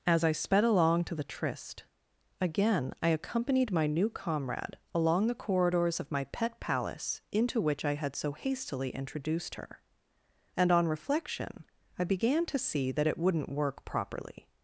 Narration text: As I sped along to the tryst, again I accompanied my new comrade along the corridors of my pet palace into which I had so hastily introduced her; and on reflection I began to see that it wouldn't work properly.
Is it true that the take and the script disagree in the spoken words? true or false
false